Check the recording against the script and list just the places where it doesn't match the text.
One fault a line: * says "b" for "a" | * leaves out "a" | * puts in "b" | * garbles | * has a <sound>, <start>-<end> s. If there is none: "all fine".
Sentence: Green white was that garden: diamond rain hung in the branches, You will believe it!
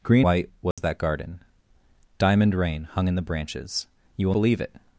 * has a dropout, 0.7-0.8 s